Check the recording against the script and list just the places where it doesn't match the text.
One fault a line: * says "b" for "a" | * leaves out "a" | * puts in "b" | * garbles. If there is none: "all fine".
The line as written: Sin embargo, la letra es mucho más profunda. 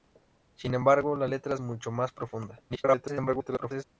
* leaves out "es"
* garbles